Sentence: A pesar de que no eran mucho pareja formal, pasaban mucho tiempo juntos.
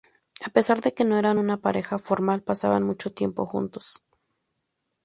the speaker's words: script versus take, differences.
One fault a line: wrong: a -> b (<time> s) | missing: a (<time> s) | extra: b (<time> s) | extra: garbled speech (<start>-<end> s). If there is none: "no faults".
wrong: mucho -> una (1.4 s)